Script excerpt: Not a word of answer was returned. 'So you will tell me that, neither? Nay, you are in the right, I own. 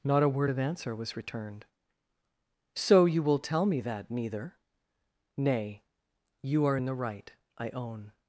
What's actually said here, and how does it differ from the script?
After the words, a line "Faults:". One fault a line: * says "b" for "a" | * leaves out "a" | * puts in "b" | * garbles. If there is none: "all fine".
Not a word of answer was returned. 'So you will tell me that, neither? Nay, you are in the right, I own.
Faults:
all fine